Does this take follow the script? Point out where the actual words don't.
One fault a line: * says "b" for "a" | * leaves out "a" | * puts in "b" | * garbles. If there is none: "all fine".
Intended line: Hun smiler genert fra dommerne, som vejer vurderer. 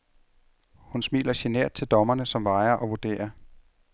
* says "til" for "fra"
* puts in "og"